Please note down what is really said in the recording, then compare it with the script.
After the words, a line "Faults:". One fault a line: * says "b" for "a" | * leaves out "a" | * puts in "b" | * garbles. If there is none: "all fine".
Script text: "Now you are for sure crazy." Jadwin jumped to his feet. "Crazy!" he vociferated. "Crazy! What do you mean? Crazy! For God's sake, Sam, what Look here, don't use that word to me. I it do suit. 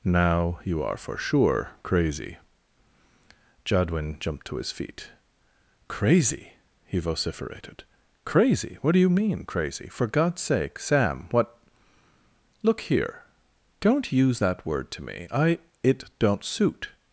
"Now you are for sure crazy." Jadwin jumped to his feet. "Crazy!" he vociferated. "Crazy! What do you mean? Crazy! For God's sake, Sam, what Look here, don't use that word to me. I it don't suit.
Faults:
* says "don't" for "do"